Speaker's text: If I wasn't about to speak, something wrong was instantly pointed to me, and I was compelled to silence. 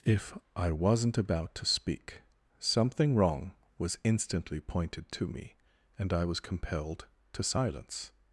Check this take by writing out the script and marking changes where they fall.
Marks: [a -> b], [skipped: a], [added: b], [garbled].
If I wasn't about to speak, something wrong was instantly pointed to me, and I was compelled to silence.